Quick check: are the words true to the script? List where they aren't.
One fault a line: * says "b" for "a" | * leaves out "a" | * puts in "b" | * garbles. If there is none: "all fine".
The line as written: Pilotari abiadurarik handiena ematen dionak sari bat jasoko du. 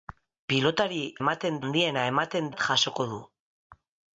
* says "ematen" for "abiadurarik"
* leaves out "dionak sari"